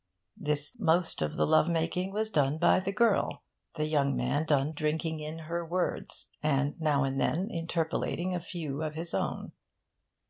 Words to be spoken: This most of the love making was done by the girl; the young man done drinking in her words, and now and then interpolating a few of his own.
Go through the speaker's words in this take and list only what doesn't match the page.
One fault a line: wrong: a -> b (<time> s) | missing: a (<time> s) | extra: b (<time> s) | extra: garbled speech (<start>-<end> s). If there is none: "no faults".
no faults